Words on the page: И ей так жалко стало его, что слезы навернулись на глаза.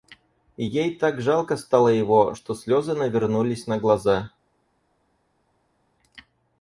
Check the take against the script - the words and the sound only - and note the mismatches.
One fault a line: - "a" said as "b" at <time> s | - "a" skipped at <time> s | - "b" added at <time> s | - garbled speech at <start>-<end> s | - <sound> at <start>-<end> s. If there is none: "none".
none